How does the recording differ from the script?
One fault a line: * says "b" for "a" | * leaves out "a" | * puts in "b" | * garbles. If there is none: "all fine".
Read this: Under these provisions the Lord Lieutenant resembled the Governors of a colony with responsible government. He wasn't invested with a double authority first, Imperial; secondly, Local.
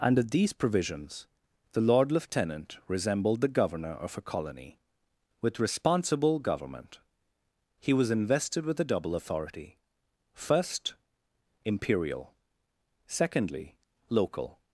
* says "Governor" for "Governors"
* says "was" for "wasn't"